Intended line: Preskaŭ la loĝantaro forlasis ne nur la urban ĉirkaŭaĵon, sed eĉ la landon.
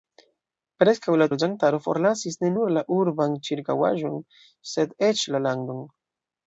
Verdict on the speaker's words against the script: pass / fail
pass